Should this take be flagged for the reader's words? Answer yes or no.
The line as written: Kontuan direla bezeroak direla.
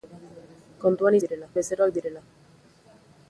no